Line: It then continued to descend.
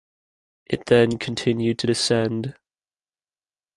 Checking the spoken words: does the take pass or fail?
pass